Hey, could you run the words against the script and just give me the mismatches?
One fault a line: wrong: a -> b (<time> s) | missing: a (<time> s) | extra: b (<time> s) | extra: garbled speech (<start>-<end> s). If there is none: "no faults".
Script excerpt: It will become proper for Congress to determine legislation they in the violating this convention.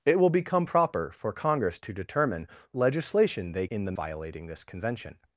no faults